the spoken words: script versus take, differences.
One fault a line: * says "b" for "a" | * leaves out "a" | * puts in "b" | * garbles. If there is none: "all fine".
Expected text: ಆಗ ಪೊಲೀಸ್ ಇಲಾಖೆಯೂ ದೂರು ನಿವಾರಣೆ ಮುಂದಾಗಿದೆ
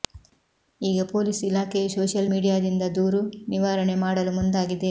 * says "ಈಗ" for "ಆಗ"
* puts in "ಸೋಶಿಯಲ್ ಮೀಡಿಯಾದಿಂದ"
* puts in "ಮಾಡಲು"